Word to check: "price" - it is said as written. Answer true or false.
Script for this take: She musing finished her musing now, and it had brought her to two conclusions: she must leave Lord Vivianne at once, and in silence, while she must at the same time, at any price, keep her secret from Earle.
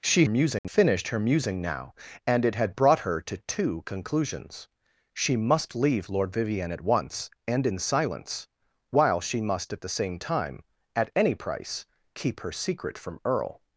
true